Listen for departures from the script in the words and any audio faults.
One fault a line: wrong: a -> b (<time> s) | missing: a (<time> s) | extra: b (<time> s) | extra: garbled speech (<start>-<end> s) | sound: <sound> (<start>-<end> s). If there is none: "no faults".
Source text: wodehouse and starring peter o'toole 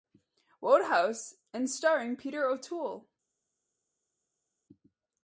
no faults